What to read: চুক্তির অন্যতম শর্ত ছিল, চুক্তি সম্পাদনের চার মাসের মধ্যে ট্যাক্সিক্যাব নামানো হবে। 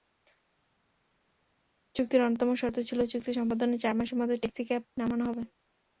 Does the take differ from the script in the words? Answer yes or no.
no